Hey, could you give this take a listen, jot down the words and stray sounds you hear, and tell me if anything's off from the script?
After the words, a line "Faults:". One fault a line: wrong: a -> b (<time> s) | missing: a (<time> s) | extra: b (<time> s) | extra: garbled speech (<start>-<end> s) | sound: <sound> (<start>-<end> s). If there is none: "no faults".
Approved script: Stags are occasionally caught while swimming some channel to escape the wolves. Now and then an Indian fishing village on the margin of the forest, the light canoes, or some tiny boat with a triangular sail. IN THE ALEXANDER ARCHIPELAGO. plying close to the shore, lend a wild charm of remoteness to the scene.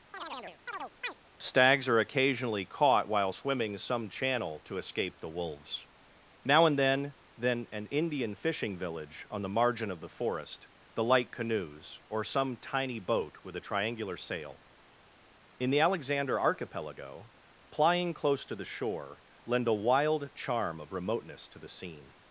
Stags are occasionally caught while swimming some channel to escape the wolves. Now and then then an Indian fishing village on the margin of the forest, the light canoes, or some tiny boat with a triangular sail. IN THE ALEXANDER ARCHIPELAGO. plying close to the shore, lend a wild charm of remoteness to the scene.
Faults:
sound: chirp (0.1-1.1 s)
extra: then (7.4 s)